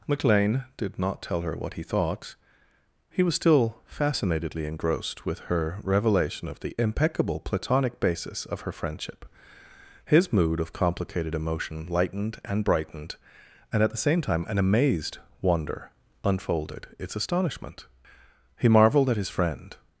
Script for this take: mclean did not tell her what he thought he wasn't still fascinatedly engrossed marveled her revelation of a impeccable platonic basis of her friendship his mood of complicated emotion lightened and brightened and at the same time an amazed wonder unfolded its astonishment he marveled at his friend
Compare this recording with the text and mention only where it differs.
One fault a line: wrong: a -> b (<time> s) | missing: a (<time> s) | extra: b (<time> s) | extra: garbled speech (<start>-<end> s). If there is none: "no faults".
wrong: wasn't -> was (3.2 s)
wrong: marveled -> with (5.2 s)
wrong: a -> the (6.6 s)